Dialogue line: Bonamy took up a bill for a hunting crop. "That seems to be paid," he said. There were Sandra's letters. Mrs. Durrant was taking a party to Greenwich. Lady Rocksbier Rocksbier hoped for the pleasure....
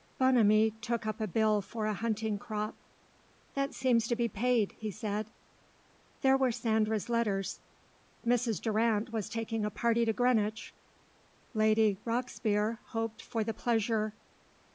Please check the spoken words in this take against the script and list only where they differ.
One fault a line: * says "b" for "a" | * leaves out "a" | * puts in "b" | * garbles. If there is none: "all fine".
* leaves out "Rocksbier"